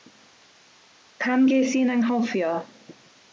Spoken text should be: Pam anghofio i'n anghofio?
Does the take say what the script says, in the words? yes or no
no